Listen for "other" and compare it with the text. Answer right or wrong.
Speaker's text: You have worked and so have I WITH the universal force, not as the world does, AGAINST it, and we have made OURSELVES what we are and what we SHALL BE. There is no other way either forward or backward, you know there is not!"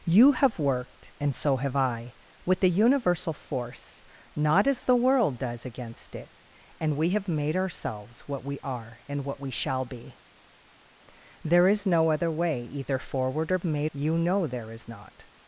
right